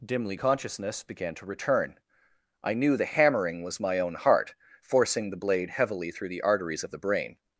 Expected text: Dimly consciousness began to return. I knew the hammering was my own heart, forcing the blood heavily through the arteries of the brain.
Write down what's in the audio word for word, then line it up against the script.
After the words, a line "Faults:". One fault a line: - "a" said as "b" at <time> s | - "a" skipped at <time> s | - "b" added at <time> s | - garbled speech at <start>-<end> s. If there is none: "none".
Dimly consciousness began to return. I knew the hammering was my own heart, forcing the blade heavily through the arteries of the brain.
Faults:
- "blood" said as "blade" at 5.4 s